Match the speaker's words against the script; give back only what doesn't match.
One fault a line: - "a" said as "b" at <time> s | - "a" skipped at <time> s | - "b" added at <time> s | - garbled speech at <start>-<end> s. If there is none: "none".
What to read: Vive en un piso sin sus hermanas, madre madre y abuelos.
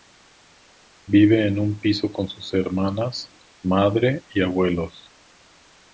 - "sin" said as "con" at 2.1 s
- "madre" skipped at 4.2 s